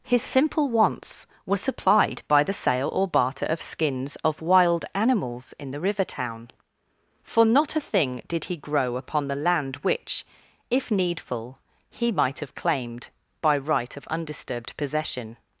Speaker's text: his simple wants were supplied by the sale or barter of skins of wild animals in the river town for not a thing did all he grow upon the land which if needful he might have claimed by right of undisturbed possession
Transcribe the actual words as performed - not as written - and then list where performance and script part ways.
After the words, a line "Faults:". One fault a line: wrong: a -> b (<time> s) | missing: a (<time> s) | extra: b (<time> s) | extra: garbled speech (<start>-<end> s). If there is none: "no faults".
his simple wants were supplied by the sale or barter of skins of wild animals in the river town for not a thing did he grow upon the land which if needful he might have claimed by right of undisturbed possession
Faults:
missing: all (8.4 s)